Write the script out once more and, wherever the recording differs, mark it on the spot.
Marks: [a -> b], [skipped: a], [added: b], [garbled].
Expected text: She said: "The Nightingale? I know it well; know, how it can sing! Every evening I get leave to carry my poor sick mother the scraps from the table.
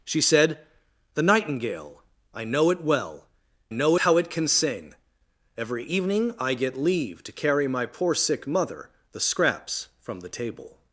She said: "The Nightingale? I know it well; know, how it can sing! Every evening I get leave to carry my poor sick mother the scraps from the table.